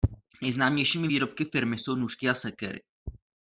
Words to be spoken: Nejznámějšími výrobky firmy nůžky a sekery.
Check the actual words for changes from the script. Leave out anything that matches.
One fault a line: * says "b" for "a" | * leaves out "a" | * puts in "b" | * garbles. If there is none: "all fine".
* puts in "jsou"